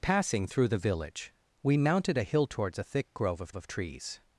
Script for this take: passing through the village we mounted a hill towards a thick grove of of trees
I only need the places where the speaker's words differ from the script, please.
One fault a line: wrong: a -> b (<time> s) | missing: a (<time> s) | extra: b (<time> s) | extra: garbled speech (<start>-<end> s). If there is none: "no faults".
no faults